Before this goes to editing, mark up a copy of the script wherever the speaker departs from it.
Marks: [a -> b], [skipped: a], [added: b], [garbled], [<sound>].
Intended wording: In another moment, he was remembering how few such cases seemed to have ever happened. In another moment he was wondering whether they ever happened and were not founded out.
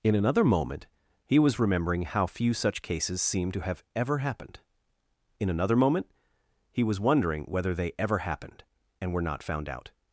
In another moment, he was remembering how few such cases seemed to have ever happened. In another moment he was wondering whether they ever happened and were not [founded -> found] out.